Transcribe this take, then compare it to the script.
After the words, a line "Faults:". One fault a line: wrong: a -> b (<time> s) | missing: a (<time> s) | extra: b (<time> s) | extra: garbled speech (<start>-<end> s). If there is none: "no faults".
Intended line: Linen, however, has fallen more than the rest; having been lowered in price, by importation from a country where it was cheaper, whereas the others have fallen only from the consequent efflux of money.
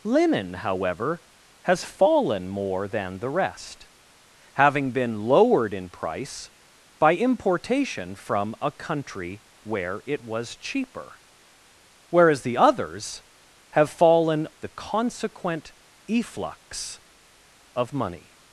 Linen, however, has fallen more than the rest; having been lowered in price, by importation from a country where it was cheaper, whereas the others have fallen the consequent efflux of money.
Faults:
missing: only from (14.5 s)